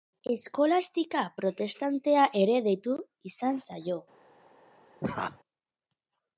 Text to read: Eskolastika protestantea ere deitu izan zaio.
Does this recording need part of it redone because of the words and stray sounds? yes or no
yes